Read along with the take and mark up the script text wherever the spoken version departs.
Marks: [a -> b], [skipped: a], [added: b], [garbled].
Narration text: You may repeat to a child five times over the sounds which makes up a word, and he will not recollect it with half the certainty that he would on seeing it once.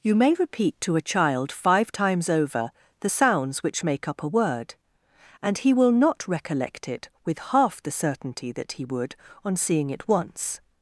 You may repeat to a child five times over the sounds which [makes -> make] up a word, and he will not recollect it with half the certainty that he would on seeing it once.